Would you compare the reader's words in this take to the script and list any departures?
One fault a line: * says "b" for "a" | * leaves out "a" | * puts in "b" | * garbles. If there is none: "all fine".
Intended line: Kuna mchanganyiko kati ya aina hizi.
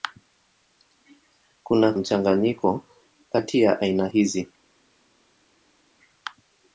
all fine